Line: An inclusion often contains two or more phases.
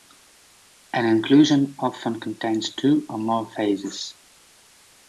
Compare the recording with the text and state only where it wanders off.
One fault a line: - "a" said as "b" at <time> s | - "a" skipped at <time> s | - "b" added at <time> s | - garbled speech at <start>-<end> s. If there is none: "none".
none